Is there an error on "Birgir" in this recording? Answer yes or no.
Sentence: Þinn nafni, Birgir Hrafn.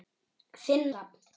yes